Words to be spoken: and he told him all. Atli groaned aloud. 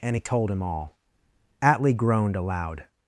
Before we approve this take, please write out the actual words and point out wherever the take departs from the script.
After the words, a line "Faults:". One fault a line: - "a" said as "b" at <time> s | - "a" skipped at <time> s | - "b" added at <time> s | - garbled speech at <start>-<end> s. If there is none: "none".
and he told him all. Atli groaned aloud.
Faults:
none